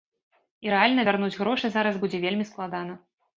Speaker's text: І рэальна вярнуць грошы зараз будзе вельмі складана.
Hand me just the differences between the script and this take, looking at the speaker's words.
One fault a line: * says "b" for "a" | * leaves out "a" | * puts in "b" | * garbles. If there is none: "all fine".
all fine